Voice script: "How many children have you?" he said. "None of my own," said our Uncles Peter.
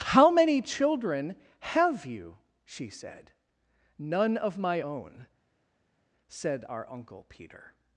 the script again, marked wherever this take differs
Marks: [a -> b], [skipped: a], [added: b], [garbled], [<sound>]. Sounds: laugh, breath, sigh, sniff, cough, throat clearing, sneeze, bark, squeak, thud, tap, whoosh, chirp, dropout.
"How many children have you?" [he -> she] said. "None of my own," said our [Uncles -> Uncle] Peter.